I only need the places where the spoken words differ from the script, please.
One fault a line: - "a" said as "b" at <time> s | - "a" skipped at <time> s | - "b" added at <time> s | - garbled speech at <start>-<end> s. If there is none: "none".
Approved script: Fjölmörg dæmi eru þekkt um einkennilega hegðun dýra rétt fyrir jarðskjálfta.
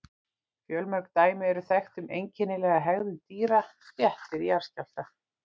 none